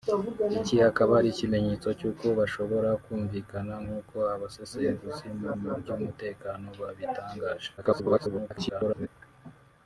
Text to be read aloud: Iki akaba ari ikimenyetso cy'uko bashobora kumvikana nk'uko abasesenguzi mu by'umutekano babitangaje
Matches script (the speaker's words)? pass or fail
fail